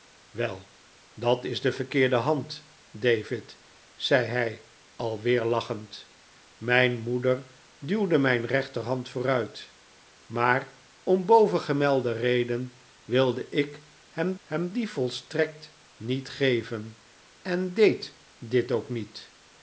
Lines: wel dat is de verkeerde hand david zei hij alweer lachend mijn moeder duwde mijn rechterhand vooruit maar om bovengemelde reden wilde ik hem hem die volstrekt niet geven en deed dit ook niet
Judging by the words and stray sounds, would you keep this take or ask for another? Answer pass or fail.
pass